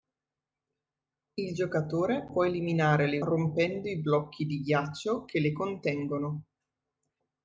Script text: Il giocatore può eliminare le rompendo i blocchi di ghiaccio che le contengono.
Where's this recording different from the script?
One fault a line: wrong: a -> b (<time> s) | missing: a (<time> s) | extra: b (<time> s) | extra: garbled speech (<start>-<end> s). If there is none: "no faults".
no faults